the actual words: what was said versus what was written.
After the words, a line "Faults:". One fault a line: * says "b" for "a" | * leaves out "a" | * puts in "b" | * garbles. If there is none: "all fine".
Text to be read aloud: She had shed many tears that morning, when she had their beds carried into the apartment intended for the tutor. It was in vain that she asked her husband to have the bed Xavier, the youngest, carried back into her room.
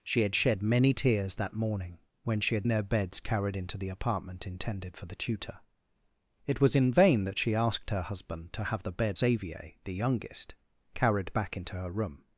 She had shed many tears that morning, when she had their beds carried into the apartment intended for the tutor. It was in vain that she asked her husband to have the bed Xavier, the youngest, carried back into her room.
Faults:
all fine